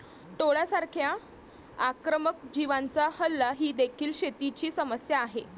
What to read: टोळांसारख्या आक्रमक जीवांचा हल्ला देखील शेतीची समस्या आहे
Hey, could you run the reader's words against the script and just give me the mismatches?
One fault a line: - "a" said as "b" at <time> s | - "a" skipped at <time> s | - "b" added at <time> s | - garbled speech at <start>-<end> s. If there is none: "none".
- "ही" added at 3.5 s